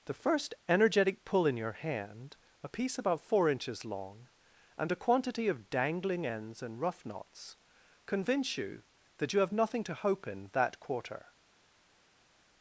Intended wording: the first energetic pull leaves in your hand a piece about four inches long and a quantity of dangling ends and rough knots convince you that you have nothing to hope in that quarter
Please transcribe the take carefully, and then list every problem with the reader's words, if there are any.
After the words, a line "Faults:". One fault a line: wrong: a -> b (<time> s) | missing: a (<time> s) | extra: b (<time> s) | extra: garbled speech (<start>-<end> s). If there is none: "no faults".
the first energetic pull in your hand a piece about four inches long and a quantity of dangling ends and rough knots convince you that you have nothing to hope in that quarter
Faults:
missing: leaves (1.4 s)